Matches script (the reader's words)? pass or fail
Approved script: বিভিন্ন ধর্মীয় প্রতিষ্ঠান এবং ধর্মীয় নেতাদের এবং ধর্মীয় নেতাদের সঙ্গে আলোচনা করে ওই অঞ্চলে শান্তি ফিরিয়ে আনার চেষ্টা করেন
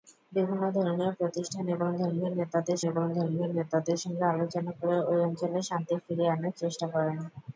pass